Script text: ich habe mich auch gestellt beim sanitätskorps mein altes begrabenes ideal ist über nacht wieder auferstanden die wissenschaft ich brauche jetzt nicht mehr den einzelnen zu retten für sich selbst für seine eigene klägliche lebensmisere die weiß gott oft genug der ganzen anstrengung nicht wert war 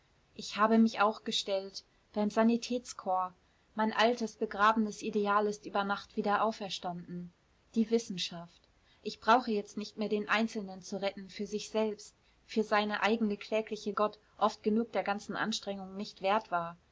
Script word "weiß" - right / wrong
wrong